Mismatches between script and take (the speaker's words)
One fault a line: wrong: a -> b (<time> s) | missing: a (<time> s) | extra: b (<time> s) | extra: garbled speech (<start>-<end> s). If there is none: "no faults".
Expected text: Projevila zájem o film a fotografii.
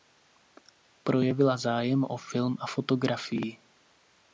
no faults